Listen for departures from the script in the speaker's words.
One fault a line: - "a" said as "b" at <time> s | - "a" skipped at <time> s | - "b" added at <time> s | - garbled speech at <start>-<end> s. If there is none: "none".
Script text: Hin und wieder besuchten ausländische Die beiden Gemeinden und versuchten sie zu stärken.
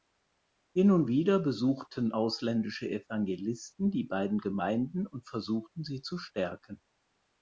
- "Evangelisten" added at 2.9 s